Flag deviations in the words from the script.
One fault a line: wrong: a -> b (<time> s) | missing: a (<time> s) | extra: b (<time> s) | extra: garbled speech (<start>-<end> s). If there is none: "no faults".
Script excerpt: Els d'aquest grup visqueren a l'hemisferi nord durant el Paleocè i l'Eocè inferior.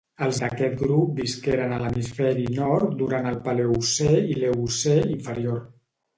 no faults